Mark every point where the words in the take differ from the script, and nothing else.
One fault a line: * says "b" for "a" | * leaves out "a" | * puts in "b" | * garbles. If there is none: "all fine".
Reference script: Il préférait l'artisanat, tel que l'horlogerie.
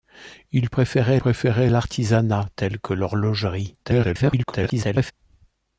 * puts in "préférait"
* garbles